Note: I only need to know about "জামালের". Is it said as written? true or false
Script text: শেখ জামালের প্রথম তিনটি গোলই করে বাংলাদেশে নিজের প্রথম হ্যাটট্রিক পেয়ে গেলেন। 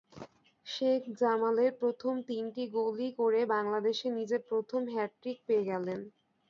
true